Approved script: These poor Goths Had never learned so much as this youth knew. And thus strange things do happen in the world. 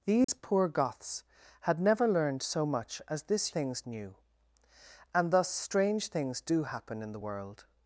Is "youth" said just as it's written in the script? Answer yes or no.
no